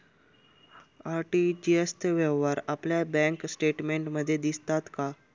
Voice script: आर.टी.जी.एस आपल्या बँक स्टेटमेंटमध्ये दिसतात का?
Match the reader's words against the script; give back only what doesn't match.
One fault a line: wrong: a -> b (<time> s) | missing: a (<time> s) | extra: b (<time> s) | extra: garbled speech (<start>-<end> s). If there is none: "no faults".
extra: चे व्यवहार (1.9 s)